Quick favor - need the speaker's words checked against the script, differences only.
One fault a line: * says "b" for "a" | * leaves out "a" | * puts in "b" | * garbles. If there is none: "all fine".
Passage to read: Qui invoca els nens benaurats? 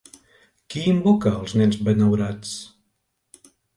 all fine